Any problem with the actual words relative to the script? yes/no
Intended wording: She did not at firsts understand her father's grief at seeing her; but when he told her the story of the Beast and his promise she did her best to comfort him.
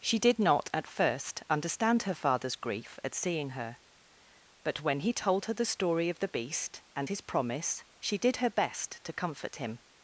yes